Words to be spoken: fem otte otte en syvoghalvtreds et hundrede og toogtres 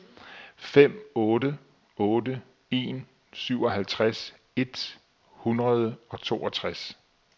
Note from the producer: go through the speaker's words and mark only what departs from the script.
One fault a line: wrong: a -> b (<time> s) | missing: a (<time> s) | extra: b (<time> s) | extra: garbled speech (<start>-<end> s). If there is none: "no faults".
no faults